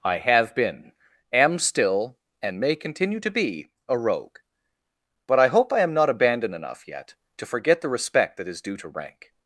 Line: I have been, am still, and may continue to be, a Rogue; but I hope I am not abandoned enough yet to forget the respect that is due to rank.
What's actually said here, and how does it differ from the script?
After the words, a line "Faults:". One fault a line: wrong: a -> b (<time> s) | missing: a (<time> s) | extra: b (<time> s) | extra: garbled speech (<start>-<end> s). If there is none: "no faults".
I have been, am still, and may continue to be, a Rogue; but I hope I am not abandoned enough yet to forget the respect that is due to rank.
Faults:
no faults